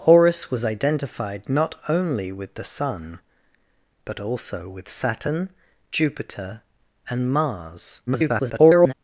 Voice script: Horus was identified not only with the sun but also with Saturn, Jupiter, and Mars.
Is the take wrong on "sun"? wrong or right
right